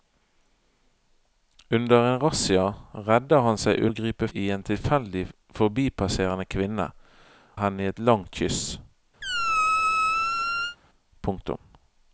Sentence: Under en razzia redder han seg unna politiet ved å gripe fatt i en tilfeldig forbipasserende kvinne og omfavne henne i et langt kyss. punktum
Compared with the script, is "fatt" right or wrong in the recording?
wrong